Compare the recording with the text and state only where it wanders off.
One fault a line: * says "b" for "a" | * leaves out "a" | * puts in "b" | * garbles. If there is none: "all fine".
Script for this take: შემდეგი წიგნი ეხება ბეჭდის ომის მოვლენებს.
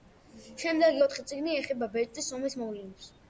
* puts in "ოთხი"